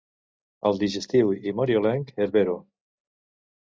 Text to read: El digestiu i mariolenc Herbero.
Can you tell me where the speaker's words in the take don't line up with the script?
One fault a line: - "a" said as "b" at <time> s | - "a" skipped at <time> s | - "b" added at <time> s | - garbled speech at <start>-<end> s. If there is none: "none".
none